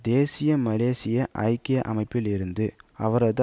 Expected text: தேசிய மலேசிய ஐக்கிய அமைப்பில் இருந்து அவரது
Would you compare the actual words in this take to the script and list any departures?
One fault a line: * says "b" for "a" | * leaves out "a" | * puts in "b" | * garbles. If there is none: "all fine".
all fine